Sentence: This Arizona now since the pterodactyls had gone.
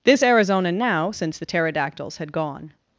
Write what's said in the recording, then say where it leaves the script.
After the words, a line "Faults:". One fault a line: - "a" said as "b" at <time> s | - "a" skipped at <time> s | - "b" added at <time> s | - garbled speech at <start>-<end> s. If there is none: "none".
This Arizona now since the pterodactyls had gone.
Faults:
none